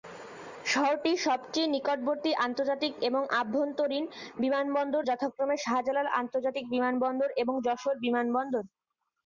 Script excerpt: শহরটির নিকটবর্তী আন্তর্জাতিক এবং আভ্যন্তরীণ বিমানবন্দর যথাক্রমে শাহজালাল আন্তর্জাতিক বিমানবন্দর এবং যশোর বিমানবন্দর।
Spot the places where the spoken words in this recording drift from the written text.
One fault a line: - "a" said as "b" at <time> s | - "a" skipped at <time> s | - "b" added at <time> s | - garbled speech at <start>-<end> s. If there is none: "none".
- "সবচেয়ে" added at 1.2 s